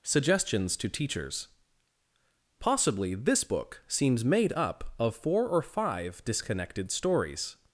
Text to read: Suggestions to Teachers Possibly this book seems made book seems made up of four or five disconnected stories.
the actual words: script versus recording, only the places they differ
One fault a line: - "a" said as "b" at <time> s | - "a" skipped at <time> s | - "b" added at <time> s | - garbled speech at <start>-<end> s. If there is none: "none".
- "book seems made" skipped at 4.5 s